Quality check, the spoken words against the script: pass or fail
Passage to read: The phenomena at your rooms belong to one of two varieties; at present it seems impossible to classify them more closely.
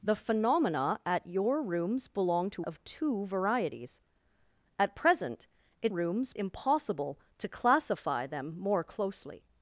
fail